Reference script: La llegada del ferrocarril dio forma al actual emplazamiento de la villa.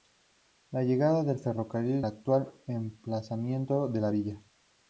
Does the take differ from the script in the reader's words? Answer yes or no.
yes